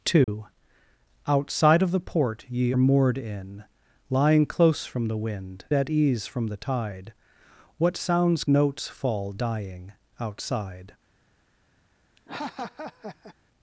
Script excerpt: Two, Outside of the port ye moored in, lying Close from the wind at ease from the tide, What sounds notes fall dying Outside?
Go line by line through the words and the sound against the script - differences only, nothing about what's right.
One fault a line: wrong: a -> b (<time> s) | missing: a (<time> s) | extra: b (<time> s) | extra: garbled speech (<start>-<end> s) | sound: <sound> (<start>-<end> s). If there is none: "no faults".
sound: dropout (0.2-0.3 s)
sound: laugh (12.2-13.3 s)